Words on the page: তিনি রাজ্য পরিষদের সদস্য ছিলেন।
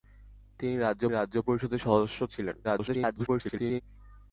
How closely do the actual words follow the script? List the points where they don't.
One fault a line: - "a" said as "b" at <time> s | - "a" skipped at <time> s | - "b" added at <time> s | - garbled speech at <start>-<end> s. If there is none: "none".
- "রাজ্য" added at 1.1 s
- garbled speech at 2.6-3.8 s